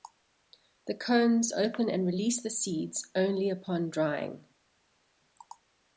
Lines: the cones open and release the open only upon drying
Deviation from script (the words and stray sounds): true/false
true